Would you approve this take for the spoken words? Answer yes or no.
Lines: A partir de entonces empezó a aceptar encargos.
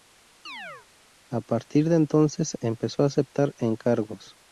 yes